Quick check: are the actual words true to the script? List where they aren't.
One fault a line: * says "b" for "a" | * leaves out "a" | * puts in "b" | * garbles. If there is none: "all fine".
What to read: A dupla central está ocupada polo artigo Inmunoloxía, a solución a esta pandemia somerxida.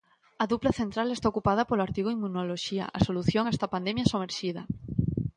all fine